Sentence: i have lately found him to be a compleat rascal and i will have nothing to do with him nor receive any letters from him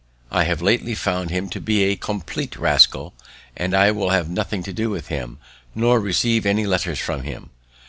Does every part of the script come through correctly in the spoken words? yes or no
yes